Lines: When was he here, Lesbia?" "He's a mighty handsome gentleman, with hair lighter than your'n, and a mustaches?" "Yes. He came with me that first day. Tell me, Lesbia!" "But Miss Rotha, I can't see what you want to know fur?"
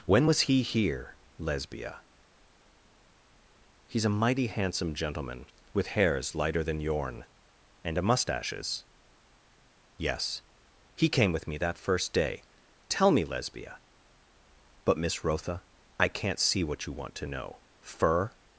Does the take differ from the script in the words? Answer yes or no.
yes